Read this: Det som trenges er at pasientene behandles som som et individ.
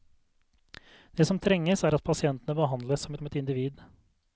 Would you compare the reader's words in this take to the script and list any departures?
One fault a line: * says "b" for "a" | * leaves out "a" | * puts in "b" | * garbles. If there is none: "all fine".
all fine